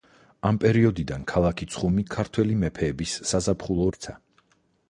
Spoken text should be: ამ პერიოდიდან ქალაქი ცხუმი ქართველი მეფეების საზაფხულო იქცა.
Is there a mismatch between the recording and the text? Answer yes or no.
no